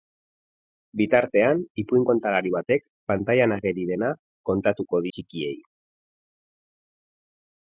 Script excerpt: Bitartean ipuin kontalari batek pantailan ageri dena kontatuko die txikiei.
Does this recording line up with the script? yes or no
no